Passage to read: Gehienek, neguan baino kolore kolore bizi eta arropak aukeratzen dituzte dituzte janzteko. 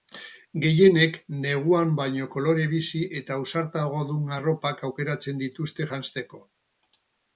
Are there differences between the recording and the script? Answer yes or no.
yes